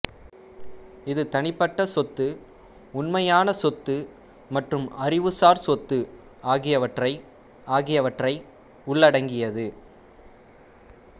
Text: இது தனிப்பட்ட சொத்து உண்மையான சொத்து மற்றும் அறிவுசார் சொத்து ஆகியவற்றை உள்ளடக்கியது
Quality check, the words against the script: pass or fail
fail